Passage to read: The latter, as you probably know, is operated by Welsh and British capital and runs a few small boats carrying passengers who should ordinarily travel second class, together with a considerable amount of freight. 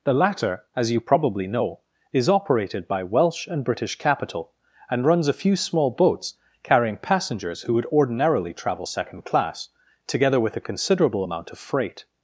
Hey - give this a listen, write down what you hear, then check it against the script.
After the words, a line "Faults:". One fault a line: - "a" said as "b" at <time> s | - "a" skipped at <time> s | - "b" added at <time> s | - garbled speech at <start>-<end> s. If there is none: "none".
The latter, as you probably know, is operated by Welsh and British capital and runs a few small boats carrying passengers who would ordinarily travel second class, together with a considerable amount of freight.
Faults:
- "should" said as "would" at 7.7 s